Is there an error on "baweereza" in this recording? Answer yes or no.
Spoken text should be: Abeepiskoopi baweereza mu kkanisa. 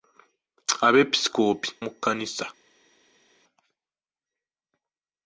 yes